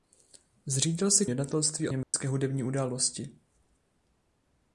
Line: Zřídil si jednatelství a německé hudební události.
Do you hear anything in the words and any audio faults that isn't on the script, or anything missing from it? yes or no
yes